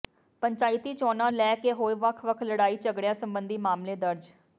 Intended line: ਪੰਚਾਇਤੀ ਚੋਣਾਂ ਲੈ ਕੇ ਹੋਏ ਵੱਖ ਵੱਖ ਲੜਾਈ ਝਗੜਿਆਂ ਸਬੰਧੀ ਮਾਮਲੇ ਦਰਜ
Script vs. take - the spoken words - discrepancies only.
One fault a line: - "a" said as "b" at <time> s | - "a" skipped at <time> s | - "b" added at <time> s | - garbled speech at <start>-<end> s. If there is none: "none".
none